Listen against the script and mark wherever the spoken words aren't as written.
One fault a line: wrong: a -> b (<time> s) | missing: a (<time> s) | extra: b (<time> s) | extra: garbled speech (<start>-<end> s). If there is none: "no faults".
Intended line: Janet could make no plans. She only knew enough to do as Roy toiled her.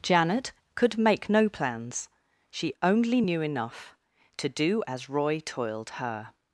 no faults